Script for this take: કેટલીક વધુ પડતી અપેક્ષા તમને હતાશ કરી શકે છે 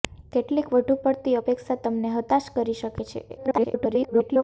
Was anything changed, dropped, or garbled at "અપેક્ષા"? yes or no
no